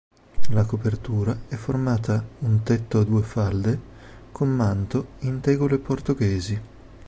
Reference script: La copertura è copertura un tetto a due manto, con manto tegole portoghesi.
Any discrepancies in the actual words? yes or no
yes